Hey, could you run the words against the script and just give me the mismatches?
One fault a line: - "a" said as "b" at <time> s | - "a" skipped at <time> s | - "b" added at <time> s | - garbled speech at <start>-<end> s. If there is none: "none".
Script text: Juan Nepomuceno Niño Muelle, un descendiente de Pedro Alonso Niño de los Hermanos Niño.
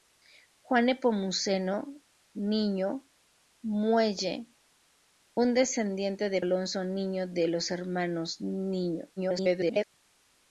- "Pedro" skipped at 6.4 s
- garbled speech at 9.2-9.8 s